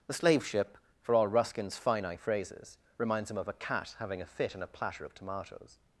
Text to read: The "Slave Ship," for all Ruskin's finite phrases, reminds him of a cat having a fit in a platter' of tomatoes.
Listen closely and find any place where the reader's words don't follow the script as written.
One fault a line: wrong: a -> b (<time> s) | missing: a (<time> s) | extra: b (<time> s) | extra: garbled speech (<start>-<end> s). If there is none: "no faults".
no faults